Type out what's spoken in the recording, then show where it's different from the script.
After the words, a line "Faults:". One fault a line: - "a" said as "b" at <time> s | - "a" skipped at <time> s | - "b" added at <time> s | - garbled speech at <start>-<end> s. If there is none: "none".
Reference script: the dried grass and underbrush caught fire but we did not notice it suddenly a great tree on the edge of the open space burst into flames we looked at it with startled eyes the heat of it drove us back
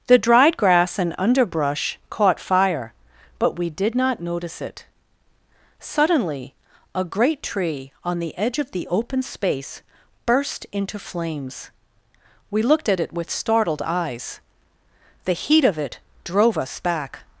the dried grass and underbrush caught fire but we did not notice it suddenly a great tree on the edge of the open space burst into flames we looked at it with startled eyes the heat of it drove us back
Faults:
none